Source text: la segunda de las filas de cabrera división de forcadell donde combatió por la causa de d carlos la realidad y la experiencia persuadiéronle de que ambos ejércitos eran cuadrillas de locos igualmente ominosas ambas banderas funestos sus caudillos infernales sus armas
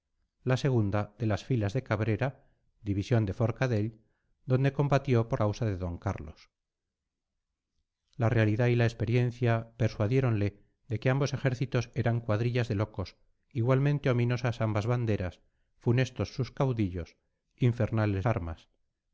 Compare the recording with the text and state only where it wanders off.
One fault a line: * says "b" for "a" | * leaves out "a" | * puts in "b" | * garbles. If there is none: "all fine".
* leaves out "la"
* leaves out "sus"